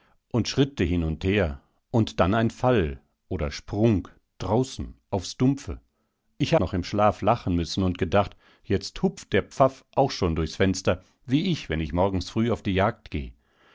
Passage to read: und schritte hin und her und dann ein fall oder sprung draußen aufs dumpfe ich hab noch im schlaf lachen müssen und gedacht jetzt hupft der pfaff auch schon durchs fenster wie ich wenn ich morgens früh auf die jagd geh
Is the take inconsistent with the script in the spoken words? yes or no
yes